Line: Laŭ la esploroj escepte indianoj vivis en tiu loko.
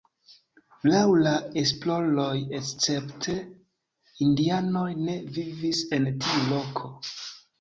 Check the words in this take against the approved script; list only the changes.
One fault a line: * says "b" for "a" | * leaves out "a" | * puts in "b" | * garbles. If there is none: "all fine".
* puts in "ne"